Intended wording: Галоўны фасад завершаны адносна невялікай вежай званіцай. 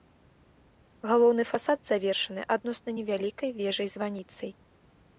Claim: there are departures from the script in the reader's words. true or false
false